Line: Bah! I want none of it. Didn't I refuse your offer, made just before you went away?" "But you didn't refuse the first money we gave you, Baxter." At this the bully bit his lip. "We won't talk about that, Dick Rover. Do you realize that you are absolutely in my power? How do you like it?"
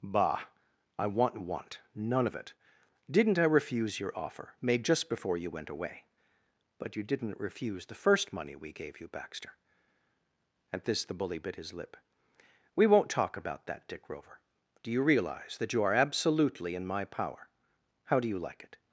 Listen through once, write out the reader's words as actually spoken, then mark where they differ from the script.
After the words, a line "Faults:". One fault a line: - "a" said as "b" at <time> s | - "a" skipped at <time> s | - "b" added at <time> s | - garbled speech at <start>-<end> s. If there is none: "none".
Bah! I want want none of it. Didn't I refuse your offer, made just before you went away?" "But you didn't refuse the first money we gave you, Baxter." At this the bully bit his lip. "We won't talk about that, Dick Rover. Do you realize that you are absolutely in my power? How do you like it?"
Faults:
- "want" added at 1.4 s